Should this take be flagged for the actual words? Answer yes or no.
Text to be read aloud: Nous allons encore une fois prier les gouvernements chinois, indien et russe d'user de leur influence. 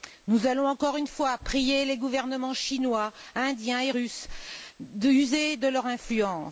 no